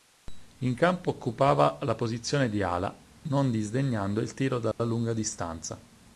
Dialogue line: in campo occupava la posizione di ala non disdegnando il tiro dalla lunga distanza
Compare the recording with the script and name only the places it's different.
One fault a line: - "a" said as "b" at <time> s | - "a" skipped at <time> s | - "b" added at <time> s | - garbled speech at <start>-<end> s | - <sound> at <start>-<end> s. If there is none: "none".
- dropout at 4.7-4.8 s